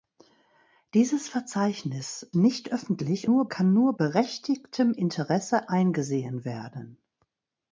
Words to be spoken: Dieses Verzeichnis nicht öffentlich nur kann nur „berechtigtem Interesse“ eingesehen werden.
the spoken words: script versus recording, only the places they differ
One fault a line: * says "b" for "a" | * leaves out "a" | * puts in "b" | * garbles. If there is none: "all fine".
all fine